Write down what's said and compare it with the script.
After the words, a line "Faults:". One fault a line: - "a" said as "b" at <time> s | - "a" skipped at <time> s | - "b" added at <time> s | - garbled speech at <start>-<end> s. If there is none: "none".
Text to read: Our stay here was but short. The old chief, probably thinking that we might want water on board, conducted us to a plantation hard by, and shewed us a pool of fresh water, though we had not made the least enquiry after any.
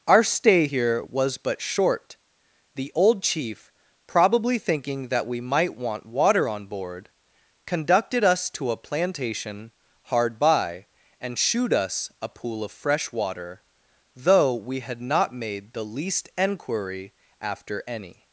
Our stay here was but short. The old chief, probably thinking that we might want water on board, conducted us to a plantation hard by, and shewed us a pool of fresh water, though we had not made the least enquiry after any.
Faults:
none